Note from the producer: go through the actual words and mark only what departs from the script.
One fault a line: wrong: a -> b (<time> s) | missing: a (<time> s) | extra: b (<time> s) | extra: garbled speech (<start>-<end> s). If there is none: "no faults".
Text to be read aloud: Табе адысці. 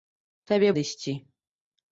no faults